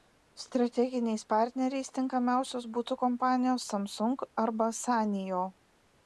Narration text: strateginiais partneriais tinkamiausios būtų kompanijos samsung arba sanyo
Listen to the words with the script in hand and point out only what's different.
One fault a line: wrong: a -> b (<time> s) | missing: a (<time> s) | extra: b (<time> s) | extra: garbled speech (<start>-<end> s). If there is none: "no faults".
no faults